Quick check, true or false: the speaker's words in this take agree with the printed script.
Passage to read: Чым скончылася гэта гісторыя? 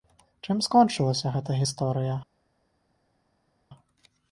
true